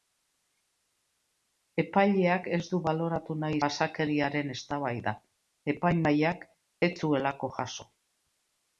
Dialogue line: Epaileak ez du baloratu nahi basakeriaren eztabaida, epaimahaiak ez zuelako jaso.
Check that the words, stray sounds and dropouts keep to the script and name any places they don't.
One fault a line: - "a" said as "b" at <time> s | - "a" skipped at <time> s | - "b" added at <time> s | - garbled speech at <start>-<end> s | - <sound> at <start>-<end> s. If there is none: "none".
none